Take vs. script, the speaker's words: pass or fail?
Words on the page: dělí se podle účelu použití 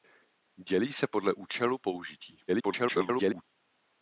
fail